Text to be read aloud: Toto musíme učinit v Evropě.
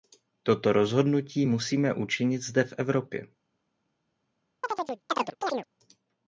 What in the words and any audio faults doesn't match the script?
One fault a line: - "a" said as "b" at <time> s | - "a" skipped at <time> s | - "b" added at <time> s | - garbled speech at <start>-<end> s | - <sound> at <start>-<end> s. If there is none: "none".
- "rozhodnutí" added at 0.7 s
- "zde" added at 2.4 s
- chirp at 4.6-5.7 s